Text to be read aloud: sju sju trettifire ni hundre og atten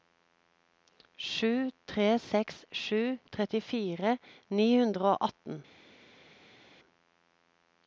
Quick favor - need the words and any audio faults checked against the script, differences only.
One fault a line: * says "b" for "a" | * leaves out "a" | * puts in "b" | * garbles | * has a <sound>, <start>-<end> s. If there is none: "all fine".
* puts in "tre seks"